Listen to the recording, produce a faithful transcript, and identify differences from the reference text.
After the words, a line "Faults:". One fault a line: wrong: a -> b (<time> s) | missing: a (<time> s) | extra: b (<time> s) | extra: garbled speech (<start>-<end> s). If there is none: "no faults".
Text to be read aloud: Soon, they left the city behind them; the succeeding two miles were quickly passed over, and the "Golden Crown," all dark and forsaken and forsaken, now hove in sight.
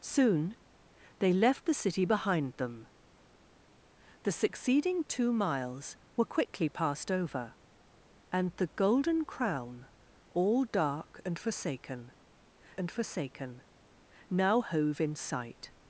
Soon, they left the city behind them; the succeeding two miles were quickly passed over, and the "Golden Crown," all dark and forsaken and forsaken, now hove in sight.
Faults:
no faults